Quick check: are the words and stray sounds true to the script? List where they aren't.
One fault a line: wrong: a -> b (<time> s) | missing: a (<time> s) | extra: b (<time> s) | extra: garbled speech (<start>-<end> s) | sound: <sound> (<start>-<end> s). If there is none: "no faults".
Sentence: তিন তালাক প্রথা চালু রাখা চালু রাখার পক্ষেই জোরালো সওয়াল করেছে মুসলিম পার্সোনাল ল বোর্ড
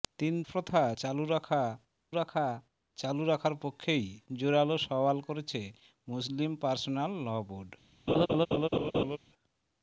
missing: তালাক (0.3 s)
extra: রাখা (2.1 s)
sound: laugh (8.1-9.2 s)